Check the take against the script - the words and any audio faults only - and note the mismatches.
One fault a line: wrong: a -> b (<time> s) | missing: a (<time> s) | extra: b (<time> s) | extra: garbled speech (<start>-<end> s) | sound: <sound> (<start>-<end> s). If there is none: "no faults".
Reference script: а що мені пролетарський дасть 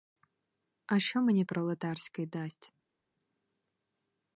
no faults